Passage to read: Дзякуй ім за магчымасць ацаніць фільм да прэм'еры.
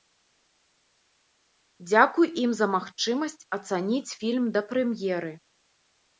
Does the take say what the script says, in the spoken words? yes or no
yes